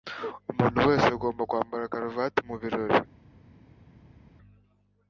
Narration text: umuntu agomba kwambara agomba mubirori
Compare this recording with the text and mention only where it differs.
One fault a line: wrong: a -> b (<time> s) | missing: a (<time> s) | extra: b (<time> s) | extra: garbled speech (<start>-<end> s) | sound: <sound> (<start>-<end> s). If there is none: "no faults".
extra: wese (0.9 s)
wrong: agomba -> karuvati (1.9 s)